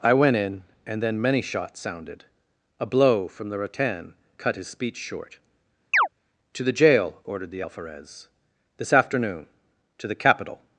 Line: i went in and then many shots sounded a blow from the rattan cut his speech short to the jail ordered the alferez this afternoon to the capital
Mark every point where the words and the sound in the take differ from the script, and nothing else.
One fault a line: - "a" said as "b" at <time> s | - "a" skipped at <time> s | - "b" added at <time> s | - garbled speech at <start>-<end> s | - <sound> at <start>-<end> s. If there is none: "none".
- chirp at 5.9-6.1 s